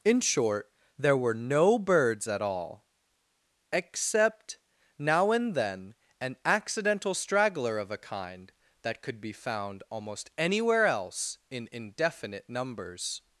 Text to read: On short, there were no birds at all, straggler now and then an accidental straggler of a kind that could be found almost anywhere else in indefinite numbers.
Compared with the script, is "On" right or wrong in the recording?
wrong